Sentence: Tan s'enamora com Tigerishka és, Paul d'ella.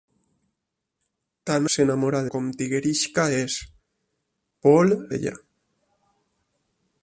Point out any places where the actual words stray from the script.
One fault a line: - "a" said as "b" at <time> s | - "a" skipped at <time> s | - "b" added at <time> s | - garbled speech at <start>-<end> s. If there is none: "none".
none